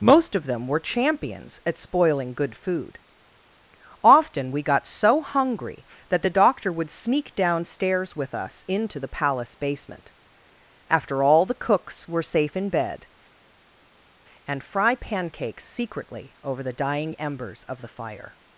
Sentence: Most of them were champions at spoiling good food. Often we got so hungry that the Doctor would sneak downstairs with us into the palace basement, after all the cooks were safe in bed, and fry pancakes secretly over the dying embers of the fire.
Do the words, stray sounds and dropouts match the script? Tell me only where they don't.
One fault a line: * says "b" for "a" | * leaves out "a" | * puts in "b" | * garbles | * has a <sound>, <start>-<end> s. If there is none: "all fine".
all fine